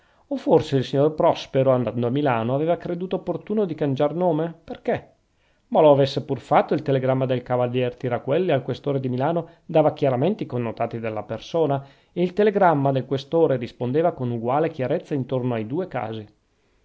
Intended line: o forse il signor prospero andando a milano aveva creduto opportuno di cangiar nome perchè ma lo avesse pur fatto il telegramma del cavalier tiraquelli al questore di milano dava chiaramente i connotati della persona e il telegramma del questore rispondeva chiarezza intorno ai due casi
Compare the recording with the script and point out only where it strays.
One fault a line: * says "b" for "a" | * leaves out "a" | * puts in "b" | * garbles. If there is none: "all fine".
* puts in "con uguale"